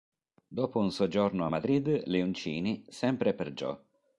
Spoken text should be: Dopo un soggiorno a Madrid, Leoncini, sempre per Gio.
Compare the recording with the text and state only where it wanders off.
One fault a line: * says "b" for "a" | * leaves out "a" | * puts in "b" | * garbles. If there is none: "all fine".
all fine